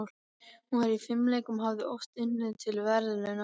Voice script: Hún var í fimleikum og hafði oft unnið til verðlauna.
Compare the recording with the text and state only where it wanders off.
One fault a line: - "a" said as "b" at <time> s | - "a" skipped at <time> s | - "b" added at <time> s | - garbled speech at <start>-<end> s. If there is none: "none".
none